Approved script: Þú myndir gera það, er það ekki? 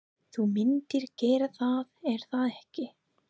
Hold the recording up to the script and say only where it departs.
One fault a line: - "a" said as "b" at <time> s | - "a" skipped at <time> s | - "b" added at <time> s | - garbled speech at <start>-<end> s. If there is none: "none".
none